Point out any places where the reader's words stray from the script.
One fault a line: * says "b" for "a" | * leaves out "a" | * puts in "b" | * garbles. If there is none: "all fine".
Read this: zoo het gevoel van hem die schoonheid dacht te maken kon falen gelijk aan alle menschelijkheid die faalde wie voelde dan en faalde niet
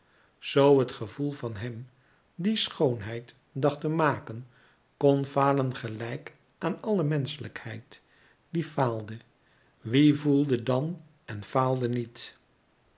all fine